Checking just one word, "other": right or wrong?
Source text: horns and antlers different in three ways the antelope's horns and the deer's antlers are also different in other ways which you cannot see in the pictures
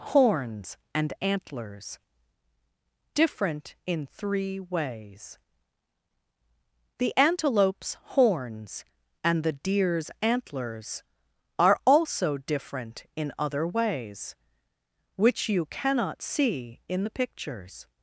right